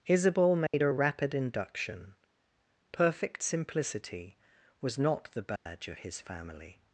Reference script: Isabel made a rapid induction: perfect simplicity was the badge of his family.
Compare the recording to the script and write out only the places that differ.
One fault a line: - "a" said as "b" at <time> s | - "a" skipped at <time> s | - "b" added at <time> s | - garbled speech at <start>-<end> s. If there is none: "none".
- "not" added at 5.0 s